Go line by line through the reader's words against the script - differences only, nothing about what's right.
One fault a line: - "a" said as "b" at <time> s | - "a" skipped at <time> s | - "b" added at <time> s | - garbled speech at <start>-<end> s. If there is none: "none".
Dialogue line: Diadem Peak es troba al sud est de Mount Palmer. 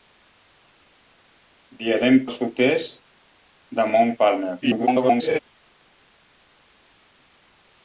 - "Peak es troba" skipped at 2.2 s
- garbled speech at 4.6-5.4 s